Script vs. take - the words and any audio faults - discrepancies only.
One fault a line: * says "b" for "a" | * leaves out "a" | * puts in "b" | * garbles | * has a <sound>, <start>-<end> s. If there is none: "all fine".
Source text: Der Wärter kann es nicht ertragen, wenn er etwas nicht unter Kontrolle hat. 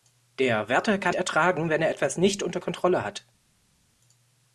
* leaves out "es nicht"